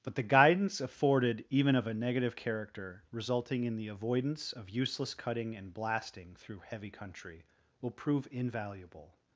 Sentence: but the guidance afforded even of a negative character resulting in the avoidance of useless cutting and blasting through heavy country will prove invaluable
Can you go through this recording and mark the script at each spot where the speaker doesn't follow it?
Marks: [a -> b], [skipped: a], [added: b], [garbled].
but the guidance afforded even of a negative character resulting in the avoidance of useless cutting and blasting through heavy country will prove invaluable